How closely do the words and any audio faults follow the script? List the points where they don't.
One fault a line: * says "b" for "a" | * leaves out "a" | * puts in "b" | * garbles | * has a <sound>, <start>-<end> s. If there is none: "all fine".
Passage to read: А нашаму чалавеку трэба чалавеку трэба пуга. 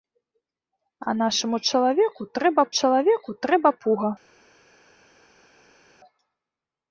all fine